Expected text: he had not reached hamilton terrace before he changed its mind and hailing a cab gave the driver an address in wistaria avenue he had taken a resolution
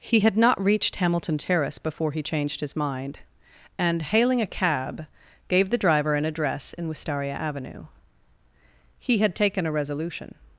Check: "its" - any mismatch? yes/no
yes